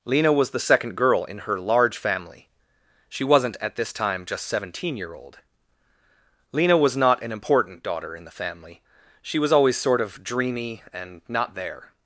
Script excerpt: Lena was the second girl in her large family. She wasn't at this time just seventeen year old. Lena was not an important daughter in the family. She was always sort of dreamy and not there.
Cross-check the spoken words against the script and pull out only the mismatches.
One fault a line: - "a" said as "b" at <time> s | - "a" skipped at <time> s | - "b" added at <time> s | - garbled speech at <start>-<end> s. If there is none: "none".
none